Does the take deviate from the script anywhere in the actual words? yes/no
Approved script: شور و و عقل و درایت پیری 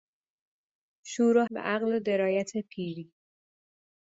no